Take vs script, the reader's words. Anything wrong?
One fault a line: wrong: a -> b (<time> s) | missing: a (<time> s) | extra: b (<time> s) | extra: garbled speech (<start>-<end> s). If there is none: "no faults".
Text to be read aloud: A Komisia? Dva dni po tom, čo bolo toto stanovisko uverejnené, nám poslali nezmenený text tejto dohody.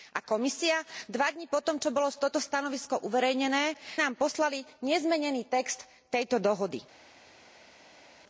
no faults